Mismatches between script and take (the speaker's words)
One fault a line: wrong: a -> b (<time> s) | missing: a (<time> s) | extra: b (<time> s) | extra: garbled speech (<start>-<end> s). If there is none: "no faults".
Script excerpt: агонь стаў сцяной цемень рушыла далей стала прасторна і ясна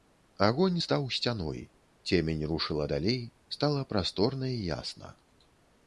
no faults